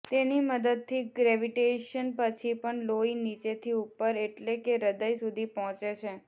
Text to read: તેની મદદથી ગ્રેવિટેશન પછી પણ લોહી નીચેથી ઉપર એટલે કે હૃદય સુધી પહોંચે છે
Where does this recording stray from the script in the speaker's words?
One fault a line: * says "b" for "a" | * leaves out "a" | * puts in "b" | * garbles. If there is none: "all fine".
all fine